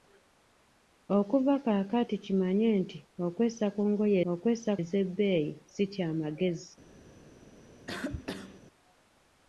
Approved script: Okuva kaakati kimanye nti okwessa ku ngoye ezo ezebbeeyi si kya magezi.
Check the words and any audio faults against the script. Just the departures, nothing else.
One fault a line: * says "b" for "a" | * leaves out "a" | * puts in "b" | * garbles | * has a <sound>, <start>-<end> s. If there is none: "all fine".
* says "okwessa" for "ezo"
* has a cough, 7.9-8.6 s